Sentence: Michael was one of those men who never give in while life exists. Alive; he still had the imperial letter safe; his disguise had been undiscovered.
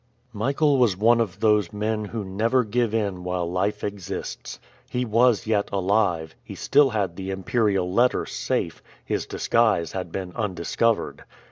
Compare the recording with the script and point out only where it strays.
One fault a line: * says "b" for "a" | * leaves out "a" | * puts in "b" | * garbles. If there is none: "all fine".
* puts in "He was yet"